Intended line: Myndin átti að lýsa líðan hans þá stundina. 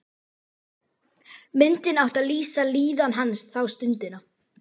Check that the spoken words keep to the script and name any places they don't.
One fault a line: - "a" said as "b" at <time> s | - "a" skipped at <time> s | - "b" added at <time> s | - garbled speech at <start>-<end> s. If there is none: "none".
none